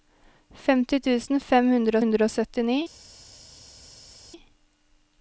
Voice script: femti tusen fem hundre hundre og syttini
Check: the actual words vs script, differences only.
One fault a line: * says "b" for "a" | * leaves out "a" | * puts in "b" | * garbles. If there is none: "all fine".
all fine